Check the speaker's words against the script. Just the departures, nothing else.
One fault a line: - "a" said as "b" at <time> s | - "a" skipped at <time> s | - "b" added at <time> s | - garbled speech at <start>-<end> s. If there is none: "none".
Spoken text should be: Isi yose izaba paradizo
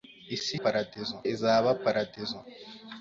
- "yose" said as "paradizo" at 0.6 s